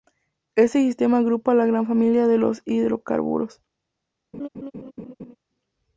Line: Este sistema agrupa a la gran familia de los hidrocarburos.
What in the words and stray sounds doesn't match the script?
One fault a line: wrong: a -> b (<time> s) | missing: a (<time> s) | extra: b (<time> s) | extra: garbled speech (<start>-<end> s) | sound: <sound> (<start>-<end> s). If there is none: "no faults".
sound: laugh (4.3-5.4 s)